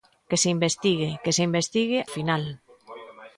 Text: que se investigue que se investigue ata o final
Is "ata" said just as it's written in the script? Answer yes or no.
no